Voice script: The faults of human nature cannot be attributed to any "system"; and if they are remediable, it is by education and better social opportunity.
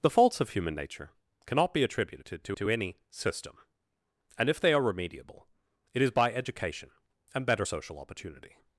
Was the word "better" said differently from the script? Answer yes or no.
no